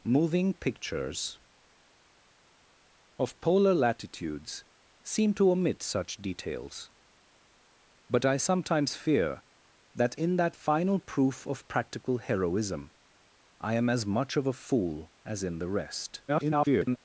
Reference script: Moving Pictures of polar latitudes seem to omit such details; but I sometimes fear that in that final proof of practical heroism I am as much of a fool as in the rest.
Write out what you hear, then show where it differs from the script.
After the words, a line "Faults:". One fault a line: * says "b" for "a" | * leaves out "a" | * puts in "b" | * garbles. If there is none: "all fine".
Moving Pictures of polar latitudes seem to omit such details; but I sometimes fear that in that final proof of practical heroism I am as much of a fool as in the rest. [garbled]
Faults:
* garbles